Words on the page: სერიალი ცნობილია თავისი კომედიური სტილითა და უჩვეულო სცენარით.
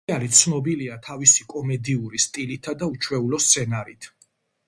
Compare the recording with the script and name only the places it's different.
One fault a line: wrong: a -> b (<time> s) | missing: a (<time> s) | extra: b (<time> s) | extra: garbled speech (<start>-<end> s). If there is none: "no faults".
no faults